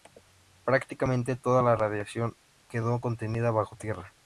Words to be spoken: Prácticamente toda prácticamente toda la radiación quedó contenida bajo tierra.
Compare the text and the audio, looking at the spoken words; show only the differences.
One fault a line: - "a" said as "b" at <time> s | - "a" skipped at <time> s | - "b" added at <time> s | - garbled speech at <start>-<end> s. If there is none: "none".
- "prácticamente toda" skipped at 1.6 s